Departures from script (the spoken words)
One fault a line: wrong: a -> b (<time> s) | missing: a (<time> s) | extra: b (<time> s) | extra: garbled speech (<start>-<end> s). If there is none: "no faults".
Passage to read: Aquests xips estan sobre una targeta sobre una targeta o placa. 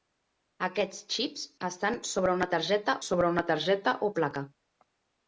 no faults